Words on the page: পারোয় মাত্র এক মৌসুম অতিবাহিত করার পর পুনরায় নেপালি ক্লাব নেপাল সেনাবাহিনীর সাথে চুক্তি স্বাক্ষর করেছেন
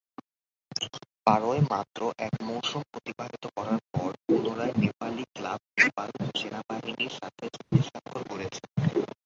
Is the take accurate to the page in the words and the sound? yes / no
no